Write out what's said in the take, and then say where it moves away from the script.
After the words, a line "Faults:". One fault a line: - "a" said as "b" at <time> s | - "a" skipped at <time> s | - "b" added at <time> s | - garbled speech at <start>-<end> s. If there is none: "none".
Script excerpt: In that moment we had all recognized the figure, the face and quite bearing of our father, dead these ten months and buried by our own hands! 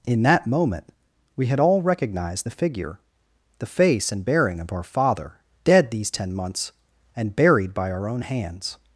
In that moment we had all recognized the figure, the face and bearing of our father, dead these ten months and buried by our own hands!
Faults:
- "quite" skipped at 4.2 s